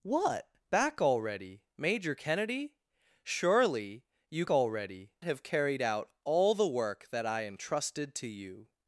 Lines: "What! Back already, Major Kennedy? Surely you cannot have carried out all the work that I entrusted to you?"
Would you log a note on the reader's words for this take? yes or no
yes